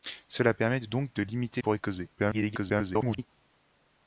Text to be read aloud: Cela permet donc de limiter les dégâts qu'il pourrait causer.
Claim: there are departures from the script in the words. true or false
true